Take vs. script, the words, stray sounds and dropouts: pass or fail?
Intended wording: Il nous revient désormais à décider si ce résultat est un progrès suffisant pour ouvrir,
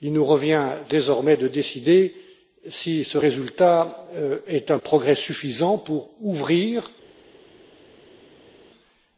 fail